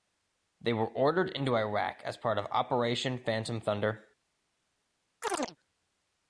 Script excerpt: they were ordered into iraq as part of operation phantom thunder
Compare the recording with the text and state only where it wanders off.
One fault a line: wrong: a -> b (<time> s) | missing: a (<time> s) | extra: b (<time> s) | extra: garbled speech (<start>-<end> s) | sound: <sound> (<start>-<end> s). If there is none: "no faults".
sound: chirp (5.2-5.6 s)